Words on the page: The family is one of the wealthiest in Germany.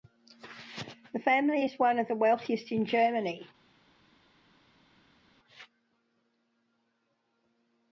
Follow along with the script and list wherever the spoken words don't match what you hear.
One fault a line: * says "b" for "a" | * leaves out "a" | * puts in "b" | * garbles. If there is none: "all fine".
all fine